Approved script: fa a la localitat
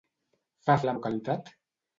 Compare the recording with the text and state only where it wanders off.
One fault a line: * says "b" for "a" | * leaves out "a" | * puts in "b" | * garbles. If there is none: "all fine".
all fine